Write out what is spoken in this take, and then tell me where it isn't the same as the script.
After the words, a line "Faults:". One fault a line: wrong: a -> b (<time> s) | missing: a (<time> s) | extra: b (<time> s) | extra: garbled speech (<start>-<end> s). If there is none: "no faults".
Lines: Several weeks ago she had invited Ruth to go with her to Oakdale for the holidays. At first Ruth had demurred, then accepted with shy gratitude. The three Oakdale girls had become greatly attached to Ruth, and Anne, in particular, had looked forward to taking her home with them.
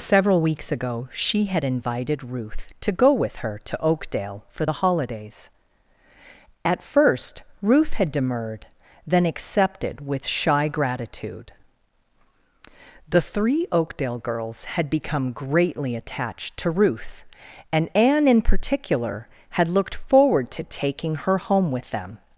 Several weeks ago she had invited Ruth to go with her to Oakdale for the holidays. At first Ruth had demurred, then accepted with shy gratitude. The three Oakdale girls had become greatly attached to Ruth, and Anne, in particular, had looked forward to taking her home with them.
Faults:
no faults